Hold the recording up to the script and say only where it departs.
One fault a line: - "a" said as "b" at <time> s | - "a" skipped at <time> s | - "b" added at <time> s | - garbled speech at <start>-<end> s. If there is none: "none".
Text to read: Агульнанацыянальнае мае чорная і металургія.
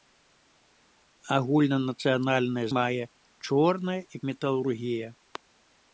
none